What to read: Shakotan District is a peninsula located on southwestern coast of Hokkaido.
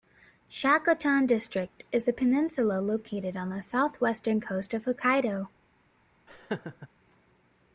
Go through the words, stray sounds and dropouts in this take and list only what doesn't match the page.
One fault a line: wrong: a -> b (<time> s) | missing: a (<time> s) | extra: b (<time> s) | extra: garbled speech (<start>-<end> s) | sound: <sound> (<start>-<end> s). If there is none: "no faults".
extra: the (3.5 s)
sound: laugh (6.3-6.9 s)